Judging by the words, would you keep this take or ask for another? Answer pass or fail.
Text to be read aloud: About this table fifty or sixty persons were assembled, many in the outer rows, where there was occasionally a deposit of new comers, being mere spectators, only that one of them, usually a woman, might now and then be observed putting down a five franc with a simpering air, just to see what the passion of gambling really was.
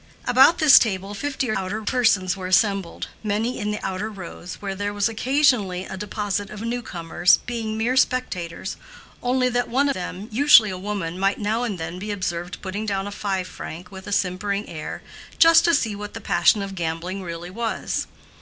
fail